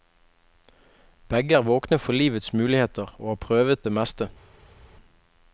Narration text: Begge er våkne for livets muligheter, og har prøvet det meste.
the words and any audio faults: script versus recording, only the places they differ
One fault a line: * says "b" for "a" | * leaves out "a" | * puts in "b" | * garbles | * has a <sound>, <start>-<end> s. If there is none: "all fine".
all fine